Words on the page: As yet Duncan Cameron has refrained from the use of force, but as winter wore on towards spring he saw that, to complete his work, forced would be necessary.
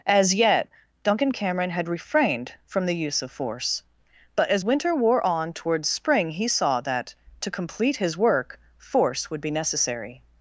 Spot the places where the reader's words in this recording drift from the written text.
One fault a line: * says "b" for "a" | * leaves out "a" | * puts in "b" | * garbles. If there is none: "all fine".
* says "had" for "has"
* says "force" for "forced"